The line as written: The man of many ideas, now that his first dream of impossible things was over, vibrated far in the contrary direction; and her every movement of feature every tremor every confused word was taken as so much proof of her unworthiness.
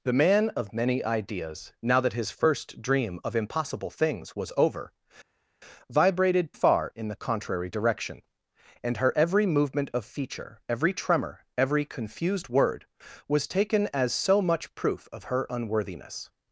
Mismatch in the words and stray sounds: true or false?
false